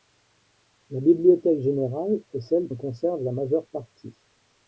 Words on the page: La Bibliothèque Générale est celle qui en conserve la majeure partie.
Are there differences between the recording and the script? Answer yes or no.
yes